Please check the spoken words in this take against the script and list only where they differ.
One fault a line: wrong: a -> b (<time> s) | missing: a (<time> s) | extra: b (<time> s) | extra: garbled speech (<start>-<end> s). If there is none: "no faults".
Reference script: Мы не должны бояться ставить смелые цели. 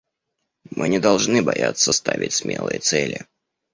no faults